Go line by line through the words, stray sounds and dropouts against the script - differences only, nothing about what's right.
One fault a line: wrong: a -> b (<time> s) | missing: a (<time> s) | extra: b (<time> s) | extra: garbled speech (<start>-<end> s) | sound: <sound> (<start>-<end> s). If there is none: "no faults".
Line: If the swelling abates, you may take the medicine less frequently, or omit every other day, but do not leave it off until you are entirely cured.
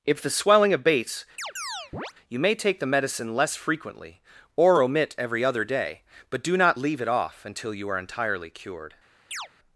sound: chirp (1.4-2.1 s)
sound: chirp (9.3-9.5 s)